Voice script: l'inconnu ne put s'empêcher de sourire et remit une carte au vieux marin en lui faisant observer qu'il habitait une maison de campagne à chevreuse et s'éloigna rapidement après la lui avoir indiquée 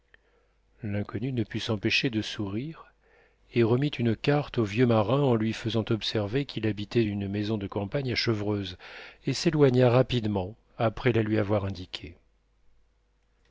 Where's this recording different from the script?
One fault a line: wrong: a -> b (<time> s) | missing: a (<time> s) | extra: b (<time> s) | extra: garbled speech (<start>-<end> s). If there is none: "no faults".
no faults